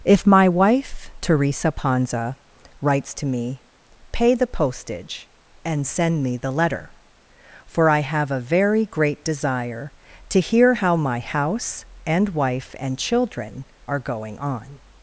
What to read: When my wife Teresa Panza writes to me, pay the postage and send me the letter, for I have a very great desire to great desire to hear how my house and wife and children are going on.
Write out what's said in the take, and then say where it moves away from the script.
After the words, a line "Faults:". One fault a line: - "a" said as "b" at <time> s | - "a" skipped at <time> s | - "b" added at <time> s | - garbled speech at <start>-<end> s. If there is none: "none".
If my wife Teresa Panza writes to me, pay the postage and send me the letter, for I have a very great desire to hear how my house and wife and children are going on.
Faults:
- "When" said as "If" at 0.0 s
- "great desire to" skipped at 10.4 s